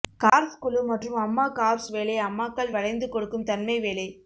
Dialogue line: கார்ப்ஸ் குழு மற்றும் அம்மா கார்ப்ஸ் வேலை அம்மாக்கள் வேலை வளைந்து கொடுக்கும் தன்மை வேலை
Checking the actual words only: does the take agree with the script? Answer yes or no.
no